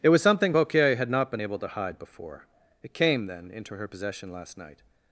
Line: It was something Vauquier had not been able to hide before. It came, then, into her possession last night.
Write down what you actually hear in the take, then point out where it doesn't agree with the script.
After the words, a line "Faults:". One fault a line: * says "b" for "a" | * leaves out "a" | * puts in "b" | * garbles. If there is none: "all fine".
It was something Vauquier had not been able to hide before. It came, then, into her possession last night.
Faults:
all fine